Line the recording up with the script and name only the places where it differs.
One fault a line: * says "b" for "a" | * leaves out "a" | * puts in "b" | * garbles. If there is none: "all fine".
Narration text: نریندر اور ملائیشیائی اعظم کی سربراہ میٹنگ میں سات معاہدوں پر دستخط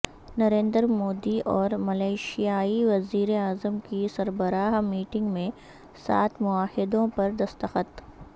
* puts in "مودی"
* puts in "وزیر"